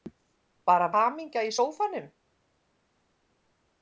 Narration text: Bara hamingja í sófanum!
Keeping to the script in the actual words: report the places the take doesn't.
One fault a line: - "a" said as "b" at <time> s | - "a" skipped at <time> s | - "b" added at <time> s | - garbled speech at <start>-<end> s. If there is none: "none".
none